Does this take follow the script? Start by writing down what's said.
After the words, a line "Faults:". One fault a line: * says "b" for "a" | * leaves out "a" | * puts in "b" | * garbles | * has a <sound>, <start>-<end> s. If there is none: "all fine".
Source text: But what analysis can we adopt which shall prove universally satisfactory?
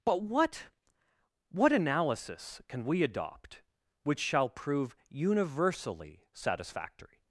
But what what analysis can we adopt which shall prove universally satisfactory?
Faults:
* puts in "what"